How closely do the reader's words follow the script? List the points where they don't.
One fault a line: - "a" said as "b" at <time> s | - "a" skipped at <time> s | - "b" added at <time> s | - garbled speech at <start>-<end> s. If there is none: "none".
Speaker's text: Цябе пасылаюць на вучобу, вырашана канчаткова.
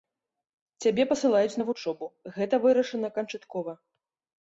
- "гэта" added at 2.4 s